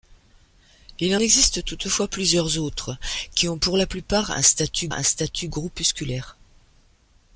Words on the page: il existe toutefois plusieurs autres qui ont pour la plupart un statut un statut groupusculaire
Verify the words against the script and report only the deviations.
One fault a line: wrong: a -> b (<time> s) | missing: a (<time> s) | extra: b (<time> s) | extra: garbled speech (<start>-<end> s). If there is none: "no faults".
no faults